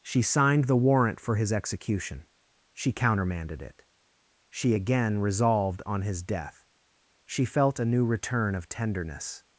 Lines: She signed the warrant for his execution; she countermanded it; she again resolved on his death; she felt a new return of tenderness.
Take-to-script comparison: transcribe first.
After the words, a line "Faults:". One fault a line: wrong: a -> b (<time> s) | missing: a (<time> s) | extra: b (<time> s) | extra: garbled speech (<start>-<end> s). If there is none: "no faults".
She signed the warrant for his execution; she countermanded it; she again resolved on his death; she felt a new return of tenderness.
Faults:
no faults